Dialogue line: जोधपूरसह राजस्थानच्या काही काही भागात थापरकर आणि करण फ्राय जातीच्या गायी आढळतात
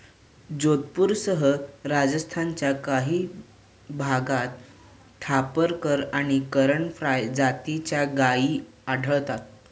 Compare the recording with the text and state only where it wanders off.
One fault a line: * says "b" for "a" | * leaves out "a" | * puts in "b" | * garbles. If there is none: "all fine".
* leaves out "काही"